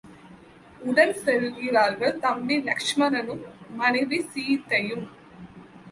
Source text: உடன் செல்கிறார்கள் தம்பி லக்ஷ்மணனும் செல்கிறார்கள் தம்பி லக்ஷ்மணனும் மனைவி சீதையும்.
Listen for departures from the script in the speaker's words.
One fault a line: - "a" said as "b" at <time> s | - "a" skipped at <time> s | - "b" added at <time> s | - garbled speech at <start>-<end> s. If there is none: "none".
- "செல்கிறார்கள் தம்பி லக்ஷ்மணனும்" skipped at 3.4 s